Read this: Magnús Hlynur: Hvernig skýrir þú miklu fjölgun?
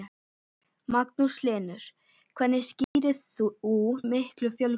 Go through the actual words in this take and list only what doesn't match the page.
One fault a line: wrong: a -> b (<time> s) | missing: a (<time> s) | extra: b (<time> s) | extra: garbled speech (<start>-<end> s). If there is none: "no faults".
no faults